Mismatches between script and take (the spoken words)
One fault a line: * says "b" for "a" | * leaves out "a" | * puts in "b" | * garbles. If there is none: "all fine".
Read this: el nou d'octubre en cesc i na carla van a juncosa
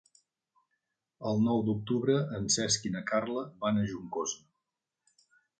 all fine